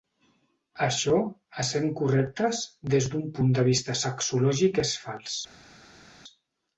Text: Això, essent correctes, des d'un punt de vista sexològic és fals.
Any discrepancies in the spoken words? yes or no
no